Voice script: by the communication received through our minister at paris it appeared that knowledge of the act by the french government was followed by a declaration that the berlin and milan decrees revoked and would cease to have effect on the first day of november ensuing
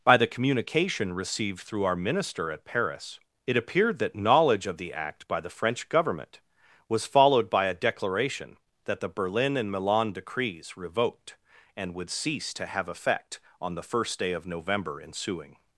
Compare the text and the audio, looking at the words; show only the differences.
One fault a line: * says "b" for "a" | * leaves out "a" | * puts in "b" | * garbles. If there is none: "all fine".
all fine